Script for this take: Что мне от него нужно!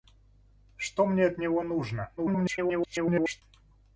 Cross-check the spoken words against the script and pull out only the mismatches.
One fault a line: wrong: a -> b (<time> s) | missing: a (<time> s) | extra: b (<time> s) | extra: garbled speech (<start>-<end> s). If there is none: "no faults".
extra: garbled speech (2.2-3.4 s)